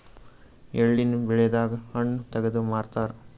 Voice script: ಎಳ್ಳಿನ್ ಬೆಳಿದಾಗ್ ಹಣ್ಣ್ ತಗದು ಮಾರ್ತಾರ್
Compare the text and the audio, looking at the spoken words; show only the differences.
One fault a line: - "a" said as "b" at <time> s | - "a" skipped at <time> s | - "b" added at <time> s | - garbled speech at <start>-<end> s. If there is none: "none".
none